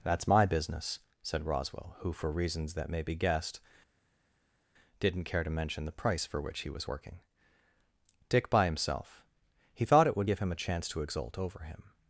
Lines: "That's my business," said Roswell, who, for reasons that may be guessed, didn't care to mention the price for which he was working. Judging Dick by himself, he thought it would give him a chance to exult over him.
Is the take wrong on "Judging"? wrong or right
wrong